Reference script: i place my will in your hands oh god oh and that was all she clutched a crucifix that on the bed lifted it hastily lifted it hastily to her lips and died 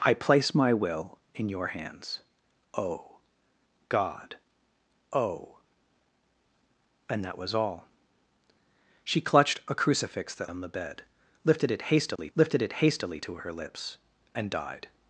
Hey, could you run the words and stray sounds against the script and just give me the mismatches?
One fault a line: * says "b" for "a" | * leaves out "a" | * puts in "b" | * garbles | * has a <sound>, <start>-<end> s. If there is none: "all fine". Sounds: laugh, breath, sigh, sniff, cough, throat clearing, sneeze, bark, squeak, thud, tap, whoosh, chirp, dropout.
* has a dropout, 12.2-12.2 s